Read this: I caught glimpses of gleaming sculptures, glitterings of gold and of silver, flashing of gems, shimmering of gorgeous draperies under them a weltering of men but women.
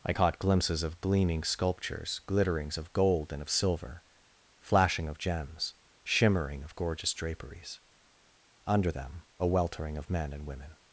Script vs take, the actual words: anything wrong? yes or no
yes